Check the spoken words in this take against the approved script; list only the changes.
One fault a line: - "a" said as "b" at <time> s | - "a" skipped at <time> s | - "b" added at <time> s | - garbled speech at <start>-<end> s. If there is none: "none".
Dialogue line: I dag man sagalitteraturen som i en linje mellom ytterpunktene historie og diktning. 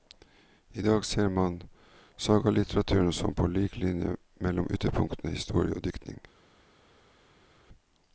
- "ser" added at 1.1 s
- "i" said as "på" at 3.3 s